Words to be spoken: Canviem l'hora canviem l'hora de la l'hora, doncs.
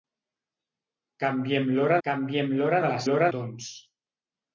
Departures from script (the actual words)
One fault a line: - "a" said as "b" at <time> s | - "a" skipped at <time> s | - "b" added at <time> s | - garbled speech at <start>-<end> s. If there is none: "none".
none